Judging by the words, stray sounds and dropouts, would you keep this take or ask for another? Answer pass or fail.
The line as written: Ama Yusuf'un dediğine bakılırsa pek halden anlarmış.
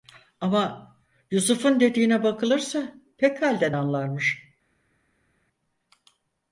pass